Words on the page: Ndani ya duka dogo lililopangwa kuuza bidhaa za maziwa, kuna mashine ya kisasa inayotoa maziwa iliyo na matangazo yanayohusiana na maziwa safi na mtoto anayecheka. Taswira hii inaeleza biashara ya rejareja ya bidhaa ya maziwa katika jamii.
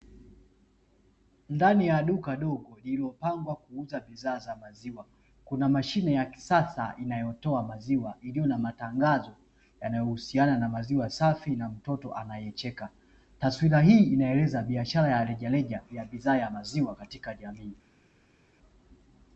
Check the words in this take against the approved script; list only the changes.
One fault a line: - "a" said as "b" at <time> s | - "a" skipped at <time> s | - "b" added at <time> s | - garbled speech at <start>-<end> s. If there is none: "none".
none